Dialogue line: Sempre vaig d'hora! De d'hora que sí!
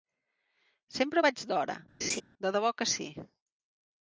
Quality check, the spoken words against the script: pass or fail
fail